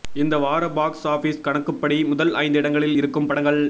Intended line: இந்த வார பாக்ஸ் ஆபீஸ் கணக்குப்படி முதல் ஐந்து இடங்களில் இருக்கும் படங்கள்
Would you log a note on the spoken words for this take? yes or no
no